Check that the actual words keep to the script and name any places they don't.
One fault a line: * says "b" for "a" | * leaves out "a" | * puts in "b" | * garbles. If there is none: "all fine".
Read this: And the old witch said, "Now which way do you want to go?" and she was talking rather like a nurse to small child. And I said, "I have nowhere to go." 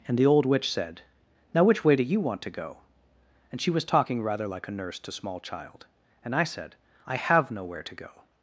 all fine